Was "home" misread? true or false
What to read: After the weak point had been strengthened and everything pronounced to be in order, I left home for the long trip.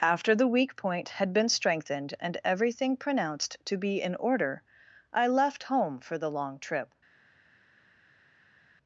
false